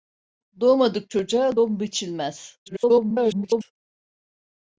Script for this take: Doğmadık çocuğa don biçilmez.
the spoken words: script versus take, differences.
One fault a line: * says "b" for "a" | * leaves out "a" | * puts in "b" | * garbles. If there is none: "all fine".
* garbles